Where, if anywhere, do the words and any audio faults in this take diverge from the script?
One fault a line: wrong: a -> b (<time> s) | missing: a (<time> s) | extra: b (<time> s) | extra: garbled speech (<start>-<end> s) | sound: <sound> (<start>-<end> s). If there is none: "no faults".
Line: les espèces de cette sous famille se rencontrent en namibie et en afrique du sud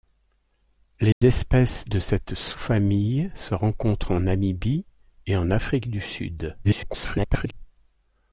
sound: dropout (1.1-1.2 s)
extra: garbled speech (6.6-7.5 s)